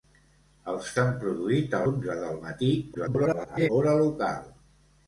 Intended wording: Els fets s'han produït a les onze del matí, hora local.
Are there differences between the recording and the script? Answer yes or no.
yes